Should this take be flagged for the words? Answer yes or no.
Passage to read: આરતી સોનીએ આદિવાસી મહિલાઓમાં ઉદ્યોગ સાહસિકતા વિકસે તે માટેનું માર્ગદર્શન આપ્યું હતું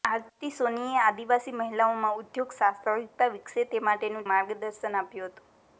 no